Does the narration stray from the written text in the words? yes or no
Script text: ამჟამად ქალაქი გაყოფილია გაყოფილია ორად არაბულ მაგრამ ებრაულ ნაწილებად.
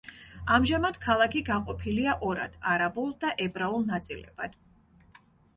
yes